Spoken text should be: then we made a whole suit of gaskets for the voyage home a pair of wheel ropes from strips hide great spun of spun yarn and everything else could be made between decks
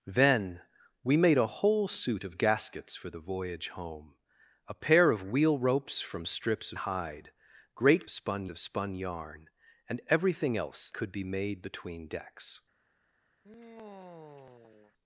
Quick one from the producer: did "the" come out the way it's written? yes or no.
yes